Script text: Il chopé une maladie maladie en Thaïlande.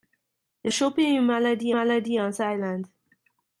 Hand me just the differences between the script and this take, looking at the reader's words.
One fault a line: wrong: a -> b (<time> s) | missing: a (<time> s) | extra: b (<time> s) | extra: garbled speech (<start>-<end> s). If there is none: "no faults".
no faults